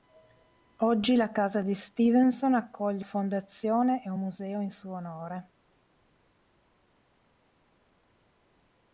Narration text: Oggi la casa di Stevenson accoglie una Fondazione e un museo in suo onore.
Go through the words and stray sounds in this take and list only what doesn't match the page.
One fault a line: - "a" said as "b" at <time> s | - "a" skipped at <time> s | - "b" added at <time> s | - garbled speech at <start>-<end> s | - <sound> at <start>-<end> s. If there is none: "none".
- "una" skipped at 3.0 s